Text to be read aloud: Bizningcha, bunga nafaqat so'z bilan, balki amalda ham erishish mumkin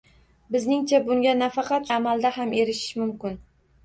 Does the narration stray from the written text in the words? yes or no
yes